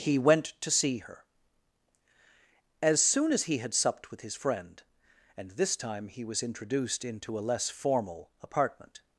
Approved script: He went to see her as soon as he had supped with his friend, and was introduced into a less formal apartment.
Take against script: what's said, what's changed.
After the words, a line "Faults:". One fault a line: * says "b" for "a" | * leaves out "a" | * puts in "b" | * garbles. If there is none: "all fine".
He went to see her as soon as he had supped with his friend, and this time he was introduced into a less formal apartment.
Faults:
* puts in "this time he"